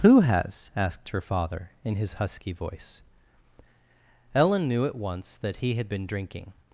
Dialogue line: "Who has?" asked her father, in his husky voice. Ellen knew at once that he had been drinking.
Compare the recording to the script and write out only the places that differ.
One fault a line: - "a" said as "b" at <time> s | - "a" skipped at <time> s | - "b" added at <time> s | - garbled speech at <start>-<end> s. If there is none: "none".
none